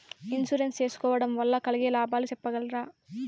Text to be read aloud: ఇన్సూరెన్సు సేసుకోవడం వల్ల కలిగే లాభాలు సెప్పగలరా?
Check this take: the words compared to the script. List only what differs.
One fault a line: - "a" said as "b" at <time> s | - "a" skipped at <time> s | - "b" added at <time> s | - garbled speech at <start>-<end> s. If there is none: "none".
none